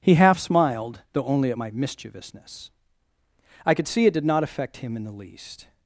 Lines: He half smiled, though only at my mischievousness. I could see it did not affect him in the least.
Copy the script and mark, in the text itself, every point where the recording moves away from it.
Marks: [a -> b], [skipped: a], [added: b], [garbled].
He half smiled, though only at my mischievousness. I could see it did not affect him in the least.